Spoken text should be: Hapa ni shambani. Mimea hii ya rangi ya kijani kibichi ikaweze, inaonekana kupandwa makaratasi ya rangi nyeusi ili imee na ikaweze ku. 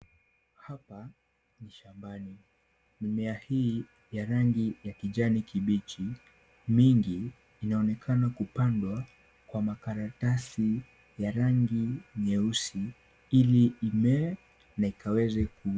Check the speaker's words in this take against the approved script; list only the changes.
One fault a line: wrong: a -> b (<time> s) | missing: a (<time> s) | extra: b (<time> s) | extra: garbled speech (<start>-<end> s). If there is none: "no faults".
wrong: ikaweze -> mingi (6.7 s)
extra: kwa (9.5 s)